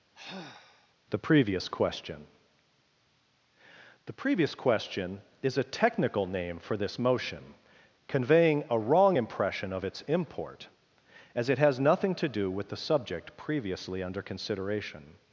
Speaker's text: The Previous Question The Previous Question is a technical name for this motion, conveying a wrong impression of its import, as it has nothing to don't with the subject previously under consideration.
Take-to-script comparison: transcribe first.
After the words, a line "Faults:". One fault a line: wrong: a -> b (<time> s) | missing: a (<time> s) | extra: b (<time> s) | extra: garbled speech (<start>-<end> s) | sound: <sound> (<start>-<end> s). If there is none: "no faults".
The Previous Question The Previous Question is a technical name for this motion, conveying a wrong impression of its import, as it has nothing to do with the subject previously under consideration.
Faults:
sound: sigh (0.1-0.9 s)
wrong: don't -> do (12.3 s)